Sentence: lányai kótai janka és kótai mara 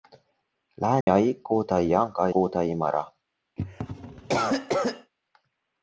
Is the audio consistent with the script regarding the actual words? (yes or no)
no